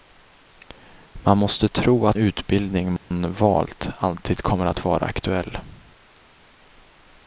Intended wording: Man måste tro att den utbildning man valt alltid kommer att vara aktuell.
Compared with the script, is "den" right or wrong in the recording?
wrong